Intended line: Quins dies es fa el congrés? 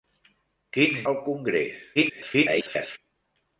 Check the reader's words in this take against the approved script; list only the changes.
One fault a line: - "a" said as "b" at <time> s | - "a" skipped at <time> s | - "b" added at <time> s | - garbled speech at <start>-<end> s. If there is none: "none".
- "dies es fa" skipped at 1.1 s
- garbled speech at 2.0-3.0 s